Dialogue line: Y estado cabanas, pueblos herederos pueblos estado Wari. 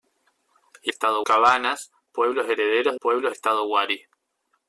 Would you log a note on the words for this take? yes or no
no